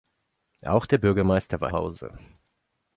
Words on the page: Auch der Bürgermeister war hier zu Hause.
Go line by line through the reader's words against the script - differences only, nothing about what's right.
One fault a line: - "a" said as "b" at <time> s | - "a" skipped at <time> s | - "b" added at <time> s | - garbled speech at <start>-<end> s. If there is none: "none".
- "hier zu" skipped at 1.7 s